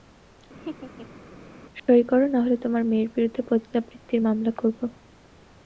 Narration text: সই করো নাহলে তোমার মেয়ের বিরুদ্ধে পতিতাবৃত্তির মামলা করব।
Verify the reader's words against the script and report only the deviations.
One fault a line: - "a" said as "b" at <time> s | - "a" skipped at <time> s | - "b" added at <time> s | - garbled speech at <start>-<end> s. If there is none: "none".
none